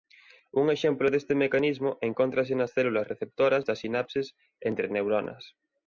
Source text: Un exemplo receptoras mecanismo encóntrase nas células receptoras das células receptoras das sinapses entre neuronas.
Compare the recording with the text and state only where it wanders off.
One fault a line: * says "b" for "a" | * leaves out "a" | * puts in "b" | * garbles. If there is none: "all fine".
* says "deste" for "receptoras"
* leaves out "células receptoras das"